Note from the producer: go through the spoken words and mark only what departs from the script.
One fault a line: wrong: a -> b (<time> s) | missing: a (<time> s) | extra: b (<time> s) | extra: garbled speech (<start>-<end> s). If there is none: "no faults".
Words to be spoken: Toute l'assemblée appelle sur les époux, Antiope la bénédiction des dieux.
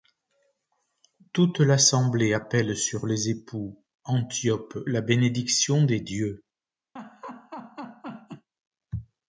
no faults